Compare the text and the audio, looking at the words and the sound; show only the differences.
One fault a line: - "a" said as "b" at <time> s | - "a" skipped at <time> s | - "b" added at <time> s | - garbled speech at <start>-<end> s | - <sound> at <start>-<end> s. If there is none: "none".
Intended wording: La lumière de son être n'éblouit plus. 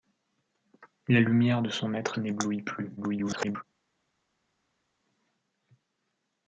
- garbled speech at 3.0-3.6 s